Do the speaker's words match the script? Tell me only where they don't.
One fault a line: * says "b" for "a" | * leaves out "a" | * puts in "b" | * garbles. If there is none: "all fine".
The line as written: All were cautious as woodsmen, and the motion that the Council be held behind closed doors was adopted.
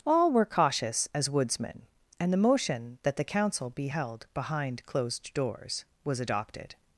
all fine